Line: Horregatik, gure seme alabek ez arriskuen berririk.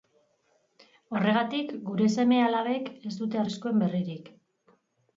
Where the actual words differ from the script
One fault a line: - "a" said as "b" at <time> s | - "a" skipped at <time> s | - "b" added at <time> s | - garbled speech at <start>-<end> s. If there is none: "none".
- "dute" added at 3.2 s